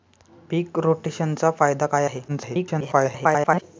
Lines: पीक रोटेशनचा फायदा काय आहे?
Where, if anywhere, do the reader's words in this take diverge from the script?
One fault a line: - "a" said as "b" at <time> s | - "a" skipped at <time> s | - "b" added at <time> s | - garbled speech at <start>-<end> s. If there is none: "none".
- garbled speech at 2.3-3.6 s